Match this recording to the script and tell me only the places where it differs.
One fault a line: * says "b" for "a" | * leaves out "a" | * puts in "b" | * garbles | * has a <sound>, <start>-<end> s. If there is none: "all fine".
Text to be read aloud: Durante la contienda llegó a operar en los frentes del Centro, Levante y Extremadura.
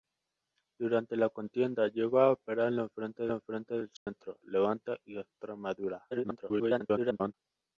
* puts in "los frentes"
* has a dropout, 4.0-4.1 s
* garbles